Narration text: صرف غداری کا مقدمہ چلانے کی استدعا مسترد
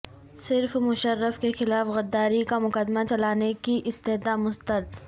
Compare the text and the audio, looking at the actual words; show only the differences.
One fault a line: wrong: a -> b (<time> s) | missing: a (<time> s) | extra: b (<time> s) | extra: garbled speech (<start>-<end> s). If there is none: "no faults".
extra: مشرف کے خلاف (0.8 s)